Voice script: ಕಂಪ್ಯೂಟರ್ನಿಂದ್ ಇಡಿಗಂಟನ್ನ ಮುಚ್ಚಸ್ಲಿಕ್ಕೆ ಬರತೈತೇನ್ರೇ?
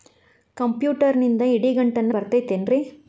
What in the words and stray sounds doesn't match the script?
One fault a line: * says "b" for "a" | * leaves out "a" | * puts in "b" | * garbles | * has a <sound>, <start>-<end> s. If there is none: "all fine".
* leaves out "ಮುಚ್ಚಸ್ಲಿಕ್ಕೆ"